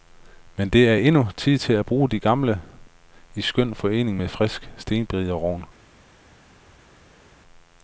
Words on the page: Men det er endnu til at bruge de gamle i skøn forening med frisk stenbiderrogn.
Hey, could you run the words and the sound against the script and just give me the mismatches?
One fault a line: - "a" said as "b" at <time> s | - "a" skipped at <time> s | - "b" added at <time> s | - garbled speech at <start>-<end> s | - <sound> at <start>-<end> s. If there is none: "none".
- "tid" added at 1.4 s